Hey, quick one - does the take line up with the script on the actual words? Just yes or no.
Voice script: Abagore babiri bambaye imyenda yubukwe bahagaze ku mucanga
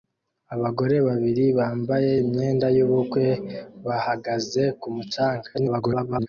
no